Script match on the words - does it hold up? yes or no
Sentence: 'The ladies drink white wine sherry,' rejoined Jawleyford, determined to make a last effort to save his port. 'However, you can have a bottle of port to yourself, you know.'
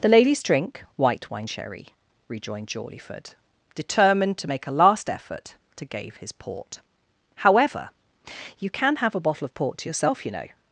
no